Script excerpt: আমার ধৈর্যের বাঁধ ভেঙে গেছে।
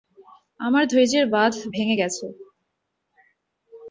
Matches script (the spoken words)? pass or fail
pass